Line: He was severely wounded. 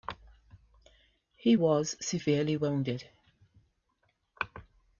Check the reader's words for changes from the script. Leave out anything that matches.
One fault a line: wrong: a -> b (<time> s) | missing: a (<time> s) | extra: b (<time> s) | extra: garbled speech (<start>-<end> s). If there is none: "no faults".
no faults